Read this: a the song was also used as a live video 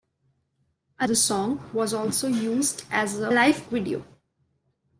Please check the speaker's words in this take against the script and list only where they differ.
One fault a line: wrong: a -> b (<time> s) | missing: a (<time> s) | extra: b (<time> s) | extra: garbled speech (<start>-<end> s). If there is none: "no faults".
no faults